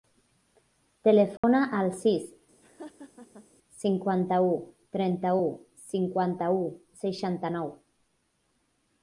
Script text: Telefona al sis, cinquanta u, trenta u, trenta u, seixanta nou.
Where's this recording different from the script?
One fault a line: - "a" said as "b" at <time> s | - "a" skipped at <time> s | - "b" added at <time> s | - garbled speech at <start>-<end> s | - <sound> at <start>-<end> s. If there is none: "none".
- dropout at 1.4-1.4 s
- laugh at 2.6-3.5 s
- "trenta" said as "cinquanta" at 6.0 s